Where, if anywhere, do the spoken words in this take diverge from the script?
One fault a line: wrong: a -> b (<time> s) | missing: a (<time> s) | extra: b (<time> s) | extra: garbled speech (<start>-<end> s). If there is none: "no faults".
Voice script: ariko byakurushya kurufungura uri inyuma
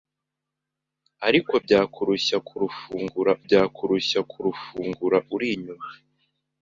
extra: byakurushya kurufungura (3.5 s)